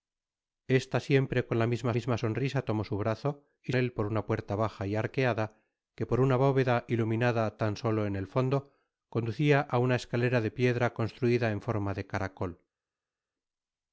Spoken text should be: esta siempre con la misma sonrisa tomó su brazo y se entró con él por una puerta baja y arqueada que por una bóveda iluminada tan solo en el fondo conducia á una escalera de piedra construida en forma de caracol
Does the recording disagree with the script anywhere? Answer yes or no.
yes